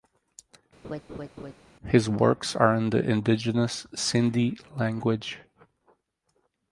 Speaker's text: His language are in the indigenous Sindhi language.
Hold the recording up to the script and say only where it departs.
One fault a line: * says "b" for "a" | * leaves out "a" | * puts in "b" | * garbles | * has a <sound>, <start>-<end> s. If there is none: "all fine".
* has a laugh, 0.8-1.5 s
* says "works" for "language"